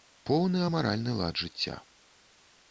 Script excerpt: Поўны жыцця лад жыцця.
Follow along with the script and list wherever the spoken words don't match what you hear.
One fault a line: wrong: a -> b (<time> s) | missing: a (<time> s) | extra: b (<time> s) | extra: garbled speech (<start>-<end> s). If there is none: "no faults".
wrong: жыцця -> амаральны (0.7 s)